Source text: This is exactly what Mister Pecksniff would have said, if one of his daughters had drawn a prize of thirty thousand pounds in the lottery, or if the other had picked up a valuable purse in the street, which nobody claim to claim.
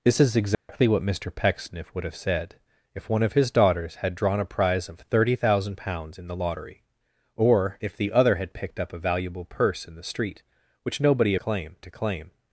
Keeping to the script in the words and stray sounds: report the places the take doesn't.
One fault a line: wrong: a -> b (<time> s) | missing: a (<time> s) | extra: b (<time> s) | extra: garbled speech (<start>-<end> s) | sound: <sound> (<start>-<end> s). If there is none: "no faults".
sound: dropout (0.5-0.7 s)